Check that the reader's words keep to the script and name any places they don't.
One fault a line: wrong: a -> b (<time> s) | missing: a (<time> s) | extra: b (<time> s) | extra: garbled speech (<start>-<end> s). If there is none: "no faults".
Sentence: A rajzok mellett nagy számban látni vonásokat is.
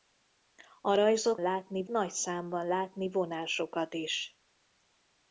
wrong: mellett -> látni (1.4 s)